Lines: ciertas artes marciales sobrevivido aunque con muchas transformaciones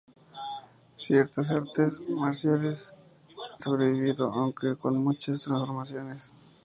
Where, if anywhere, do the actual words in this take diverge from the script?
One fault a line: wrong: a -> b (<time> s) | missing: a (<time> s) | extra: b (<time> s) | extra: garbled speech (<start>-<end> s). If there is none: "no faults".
no faults